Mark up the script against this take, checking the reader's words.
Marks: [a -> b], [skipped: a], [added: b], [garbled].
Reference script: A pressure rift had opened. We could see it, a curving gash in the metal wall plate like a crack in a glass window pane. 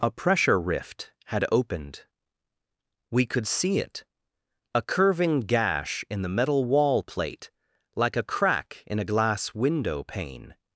A pressure rift had opened. We could see it, a curving gash in the metal wall plate like a crack in a glass window pane.